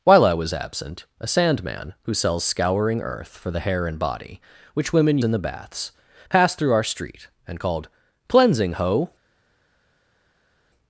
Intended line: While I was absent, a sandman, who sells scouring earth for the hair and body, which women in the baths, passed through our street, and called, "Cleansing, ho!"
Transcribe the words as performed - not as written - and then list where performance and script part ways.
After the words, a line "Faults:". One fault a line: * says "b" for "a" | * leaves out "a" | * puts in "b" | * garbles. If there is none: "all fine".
While I was absent, a sandman, who sells scouring earth for the hair and body, which women in the baths, passed through our street, and called, "Cleansing, ho!"
Faults:
all fine